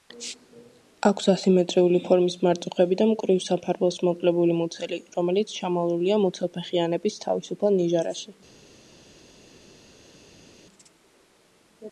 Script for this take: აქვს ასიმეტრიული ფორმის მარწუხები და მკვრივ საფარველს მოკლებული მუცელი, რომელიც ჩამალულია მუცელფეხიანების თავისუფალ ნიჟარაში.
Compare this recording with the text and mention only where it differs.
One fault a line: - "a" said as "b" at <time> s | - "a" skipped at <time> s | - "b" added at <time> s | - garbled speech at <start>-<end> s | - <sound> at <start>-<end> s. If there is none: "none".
none